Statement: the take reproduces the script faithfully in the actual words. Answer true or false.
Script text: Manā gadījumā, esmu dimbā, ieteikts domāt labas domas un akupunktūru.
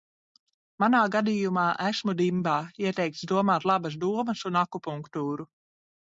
true